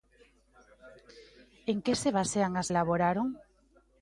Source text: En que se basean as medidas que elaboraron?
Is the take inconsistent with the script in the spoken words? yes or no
yes